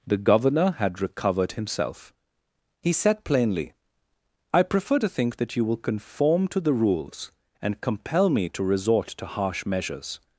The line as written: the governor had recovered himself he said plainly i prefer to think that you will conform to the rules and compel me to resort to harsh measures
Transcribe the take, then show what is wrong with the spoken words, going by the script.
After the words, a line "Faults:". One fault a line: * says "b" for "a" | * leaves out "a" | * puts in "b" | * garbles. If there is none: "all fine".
the governor had recovered himself he said plainly i prefer to think that you will conform to the rules and compel me to resort to harsh measures
Faults:
all fine